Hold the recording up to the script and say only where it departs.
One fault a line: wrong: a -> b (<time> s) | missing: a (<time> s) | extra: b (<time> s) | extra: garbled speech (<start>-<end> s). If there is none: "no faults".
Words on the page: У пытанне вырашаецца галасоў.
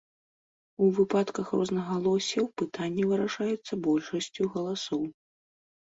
extra: выпадках рознагалоссяў (1.0 s)
extra: большасцю (3.9 s)